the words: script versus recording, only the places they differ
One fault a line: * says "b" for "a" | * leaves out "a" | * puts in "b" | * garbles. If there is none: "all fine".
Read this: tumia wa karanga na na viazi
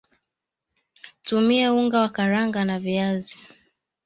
* puts in "unga"
* leaves out "na"